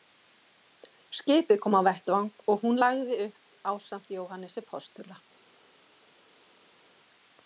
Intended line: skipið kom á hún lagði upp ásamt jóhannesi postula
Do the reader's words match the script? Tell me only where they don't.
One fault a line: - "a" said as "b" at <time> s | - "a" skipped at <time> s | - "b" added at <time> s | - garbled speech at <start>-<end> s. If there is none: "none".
- "vettvang og" added at 1.9 s